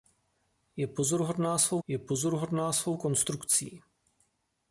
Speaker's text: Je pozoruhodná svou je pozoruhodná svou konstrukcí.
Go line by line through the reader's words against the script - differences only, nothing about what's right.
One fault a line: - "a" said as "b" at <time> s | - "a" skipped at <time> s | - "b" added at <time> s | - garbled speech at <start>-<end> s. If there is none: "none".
none